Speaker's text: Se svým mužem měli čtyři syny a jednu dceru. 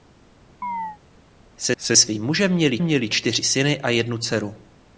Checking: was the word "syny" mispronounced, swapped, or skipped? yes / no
no